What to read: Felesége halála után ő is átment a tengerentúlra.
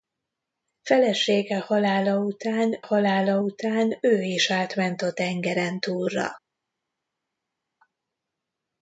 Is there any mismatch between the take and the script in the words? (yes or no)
yes